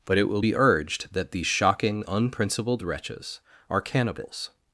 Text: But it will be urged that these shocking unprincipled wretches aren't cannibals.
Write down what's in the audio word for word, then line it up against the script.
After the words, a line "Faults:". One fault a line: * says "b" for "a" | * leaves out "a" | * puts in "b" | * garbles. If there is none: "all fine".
But it will be urged that these shocking unprincipled wretches are cannibals.
Faults:
* says "are" for "aren't"